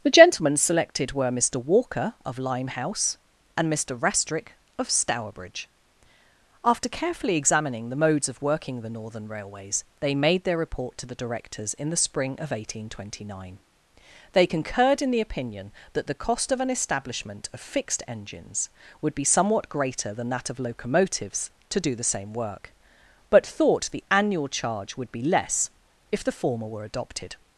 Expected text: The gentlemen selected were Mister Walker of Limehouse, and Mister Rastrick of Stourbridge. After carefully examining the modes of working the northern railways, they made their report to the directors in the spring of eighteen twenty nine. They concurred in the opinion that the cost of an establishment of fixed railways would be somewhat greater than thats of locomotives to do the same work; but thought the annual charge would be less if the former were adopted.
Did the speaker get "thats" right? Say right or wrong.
wrong